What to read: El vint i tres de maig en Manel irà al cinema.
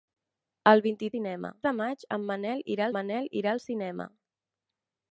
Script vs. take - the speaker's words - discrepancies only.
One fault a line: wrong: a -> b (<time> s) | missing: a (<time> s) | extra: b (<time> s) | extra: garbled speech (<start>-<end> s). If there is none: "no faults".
wrong: tres -> cinema (1.1 s)
extra: Manel irà (3.0 s)